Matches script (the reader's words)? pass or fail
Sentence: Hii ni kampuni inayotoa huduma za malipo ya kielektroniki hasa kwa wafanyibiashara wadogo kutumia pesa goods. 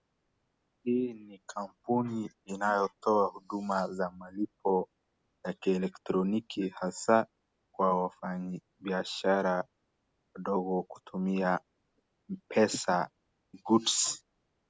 pass